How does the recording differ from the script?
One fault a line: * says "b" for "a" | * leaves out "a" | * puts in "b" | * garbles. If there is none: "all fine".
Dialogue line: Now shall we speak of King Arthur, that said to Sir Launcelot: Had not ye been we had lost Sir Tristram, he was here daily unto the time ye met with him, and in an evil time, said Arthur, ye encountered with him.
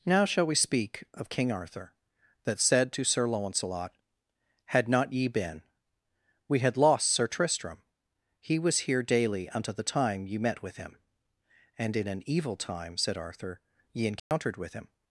all fine